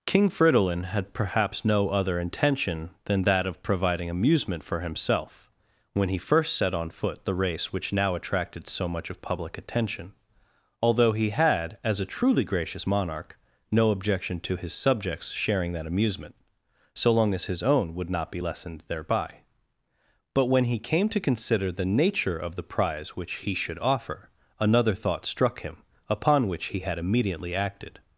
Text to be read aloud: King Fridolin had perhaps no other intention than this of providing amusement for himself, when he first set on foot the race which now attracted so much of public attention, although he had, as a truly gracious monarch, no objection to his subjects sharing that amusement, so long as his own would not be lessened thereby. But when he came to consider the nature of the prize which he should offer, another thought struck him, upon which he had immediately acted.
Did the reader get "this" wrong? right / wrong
wrong